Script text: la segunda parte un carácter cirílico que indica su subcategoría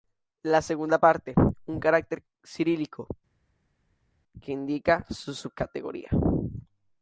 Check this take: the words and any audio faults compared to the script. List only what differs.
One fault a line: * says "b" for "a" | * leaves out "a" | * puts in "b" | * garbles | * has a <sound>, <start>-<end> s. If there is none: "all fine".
all fine